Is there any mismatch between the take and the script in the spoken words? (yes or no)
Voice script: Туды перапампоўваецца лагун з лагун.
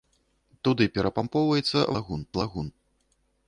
no